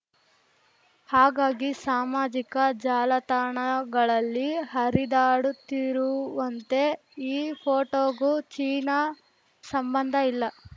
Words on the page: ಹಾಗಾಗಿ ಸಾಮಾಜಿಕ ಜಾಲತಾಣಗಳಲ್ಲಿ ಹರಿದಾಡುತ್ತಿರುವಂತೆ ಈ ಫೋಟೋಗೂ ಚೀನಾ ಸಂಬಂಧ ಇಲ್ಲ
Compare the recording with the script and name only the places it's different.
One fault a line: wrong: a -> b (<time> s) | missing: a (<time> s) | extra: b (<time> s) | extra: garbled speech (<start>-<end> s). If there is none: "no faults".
no faults